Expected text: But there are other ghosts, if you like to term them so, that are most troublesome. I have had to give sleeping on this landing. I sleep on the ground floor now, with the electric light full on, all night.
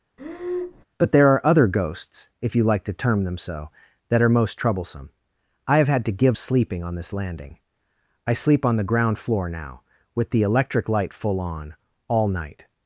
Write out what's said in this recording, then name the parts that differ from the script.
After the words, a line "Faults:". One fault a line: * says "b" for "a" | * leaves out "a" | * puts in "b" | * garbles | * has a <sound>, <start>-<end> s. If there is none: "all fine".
But there are other ghosts, if you like to term them so, that are most troublesome. I have had to give sleeping on this landing. I sleep on the ground floor now, with the electric light full on, all night.
Faults:
* has a breath, 0.2-0.8 s